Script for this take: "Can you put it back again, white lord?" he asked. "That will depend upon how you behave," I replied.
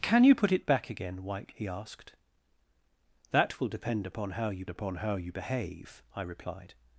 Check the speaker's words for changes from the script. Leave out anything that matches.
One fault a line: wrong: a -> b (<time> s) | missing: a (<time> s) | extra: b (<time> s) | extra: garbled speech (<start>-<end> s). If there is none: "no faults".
missing: lord (1.5 s)
extra: upon how you (4.7 s)